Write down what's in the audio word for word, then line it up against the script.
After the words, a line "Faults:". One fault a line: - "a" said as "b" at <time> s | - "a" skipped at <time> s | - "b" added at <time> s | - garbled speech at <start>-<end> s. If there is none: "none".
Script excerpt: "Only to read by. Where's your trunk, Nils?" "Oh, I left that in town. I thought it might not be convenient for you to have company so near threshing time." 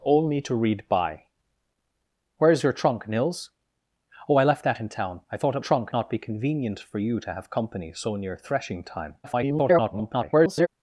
"Only to read by. Where's your trunk, Nils?" "Oh, I left that in town. I thought it trunk not be convenient for you to have company so near threshing time." [garbled]
Faults:
- "might" said as "trunk" at 5.6 s
- garbled speech at 9.2-10.7 s